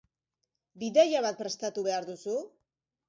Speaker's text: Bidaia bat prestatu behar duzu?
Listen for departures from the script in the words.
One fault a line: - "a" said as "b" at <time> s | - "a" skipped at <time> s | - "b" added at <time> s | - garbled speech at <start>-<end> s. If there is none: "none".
none